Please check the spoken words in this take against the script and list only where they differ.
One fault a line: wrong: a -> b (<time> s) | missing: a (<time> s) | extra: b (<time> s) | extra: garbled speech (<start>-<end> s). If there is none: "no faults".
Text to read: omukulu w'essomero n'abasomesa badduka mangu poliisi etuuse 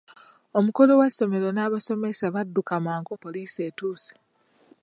no faults